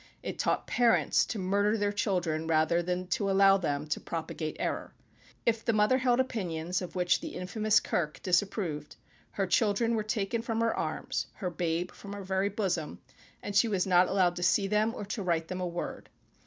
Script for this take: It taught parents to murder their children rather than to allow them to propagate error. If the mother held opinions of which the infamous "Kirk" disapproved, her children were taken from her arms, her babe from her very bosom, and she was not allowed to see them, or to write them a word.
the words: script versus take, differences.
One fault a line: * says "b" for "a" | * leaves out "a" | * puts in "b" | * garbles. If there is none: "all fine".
all fine